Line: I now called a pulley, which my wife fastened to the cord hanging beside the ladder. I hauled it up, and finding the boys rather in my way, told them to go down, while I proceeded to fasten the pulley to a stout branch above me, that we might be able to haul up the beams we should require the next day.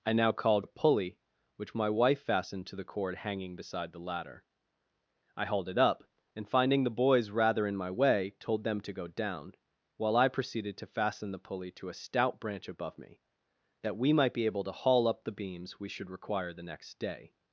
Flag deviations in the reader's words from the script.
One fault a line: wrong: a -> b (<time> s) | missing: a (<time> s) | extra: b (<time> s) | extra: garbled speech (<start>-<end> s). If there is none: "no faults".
no faults